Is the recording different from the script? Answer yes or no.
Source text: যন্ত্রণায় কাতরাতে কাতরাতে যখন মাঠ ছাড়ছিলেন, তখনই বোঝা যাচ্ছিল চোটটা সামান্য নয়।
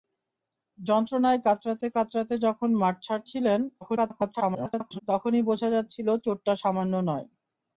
yes